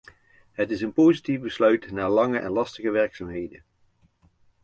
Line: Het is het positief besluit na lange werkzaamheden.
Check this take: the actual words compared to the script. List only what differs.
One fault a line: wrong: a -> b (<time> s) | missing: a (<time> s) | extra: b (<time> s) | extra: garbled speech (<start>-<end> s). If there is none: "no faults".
wrong: het -> een (0.8 s)
extra: en lastige (2.3 s)